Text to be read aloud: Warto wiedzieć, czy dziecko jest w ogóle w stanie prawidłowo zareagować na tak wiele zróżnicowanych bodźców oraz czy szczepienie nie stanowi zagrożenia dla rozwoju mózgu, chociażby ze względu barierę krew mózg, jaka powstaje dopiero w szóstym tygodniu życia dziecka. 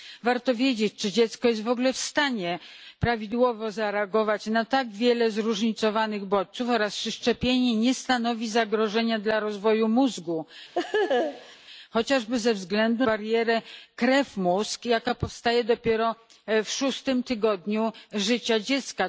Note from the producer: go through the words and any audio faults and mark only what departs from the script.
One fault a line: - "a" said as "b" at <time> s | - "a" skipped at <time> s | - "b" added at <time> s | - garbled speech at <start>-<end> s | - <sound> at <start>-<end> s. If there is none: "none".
- laugh at 10.7-11.6 s